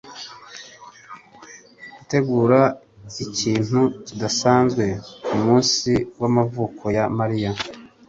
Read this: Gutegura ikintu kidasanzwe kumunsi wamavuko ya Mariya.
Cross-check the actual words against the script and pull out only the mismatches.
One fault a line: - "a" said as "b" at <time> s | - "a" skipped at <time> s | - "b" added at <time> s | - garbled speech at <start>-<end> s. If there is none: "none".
none